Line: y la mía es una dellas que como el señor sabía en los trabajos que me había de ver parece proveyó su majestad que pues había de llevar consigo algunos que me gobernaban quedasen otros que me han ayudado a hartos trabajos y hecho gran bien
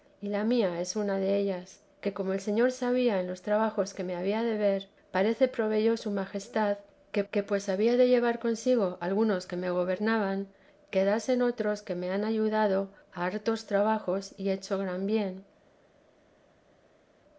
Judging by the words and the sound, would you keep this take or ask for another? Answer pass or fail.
fail